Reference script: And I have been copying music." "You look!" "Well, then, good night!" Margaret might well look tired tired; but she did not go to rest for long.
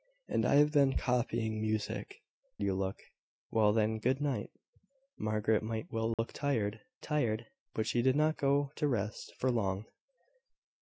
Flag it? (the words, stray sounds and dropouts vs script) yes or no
yes